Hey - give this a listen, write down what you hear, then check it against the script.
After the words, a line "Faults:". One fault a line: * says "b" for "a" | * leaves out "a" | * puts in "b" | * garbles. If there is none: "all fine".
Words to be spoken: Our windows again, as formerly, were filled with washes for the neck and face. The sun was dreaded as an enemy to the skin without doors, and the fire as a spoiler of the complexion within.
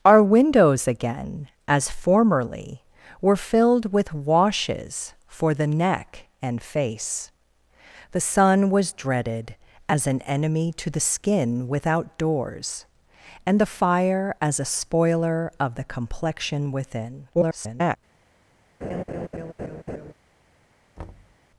Our windows again, as formerly, were filled with washes for the neck and face. The sun was dreaded as an enemy to the skin without doors, and the fire as a spoiler of the complexion within. [garbled]
Faults:
* garbles